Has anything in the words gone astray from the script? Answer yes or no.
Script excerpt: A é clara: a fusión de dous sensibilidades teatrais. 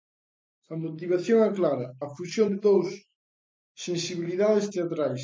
yes